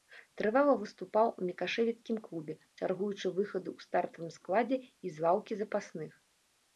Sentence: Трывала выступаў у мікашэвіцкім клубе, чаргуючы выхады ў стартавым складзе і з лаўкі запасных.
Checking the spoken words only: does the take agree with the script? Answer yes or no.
yes